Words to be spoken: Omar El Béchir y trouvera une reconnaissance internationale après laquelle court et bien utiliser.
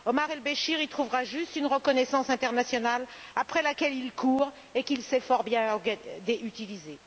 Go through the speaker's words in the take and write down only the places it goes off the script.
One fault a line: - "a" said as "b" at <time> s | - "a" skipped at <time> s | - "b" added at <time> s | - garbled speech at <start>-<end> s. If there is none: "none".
- "juste" added at 1.2 s
- "il" added at 4.0 s
- "qu'il sait fort" added at 4.8 s